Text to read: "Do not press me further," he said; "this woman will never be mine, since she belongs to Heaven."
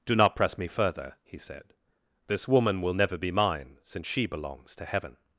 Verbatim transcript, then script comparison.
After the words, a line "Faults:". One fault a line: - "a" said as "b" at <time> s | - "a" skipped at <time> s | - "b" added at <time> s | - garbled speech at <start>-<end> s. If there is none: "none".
"Do not press me further," he said; "this woman will never be mine, since she belongs to Heaven."
Faults:
none